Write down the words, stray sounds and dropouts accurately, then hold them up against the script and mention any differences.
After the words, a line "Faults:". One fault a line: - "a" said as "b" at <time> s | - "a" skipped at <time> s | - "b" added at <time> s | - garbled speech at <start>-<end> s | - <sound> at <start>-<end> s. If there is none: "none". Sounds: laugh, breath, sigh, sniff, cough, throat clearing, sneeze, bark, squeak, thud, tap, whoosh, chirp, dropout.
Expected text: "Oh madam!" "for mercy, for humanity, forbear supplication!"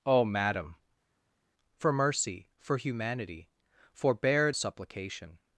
"Oh madam!" "for mercy, for humanity, forbear supplication!"
Faults:
none